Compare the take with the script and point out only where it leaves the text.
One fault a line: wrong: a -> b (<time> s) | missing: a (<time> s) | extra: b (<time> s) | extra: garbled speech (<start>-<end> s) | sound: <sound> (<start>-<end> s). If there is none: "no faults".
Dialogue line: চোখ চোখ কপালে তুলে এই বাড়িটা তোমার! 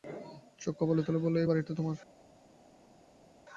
missing: চোখ (0.7 s)
extra: বলল (1.2 s)